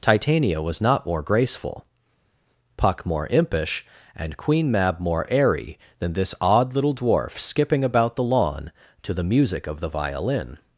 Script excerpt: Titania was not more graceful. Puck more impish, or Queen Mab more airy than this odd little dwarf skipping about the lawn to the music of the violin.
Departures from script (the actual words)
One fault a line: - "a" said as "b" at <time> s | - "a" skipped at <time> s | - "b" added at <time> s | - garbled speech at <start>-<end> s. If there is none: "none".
- "or" said as "and" at 4.2 s